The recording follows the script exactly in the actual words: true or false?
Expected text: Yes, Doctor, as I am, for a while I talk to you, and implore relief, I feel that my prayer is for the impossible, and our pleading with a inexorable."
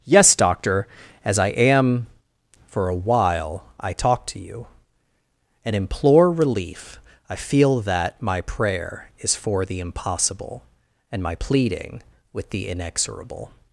false